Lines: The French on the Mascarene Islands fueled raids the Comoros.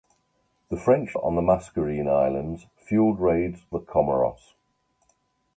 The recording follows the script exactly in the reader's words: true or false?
true